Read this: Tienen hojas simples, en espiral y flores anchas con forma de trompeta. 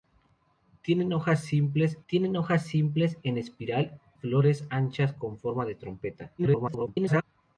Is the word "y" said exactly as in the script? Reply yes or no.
no